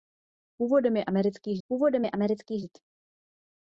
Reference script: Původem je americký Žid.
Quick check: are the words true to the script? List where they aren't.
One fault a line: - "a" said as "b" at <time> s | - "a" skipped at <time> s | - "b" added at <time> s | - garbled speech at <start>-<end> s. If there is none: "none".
- "původem je americký" added at 1.7 s